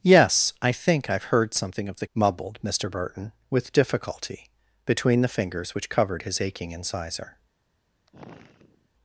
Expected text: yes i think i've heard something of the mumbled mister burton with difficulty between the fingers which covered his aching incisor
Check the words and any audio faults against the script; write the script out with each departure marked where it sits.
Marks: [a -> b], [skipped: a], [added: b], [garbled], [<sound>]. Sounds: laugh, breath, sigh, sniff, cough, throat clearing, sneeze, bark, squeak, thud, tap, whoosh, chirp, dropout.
yes i think i've heard something of the mumbled mister burton with difficulty between the fingers which covered his aching incisor [sigh]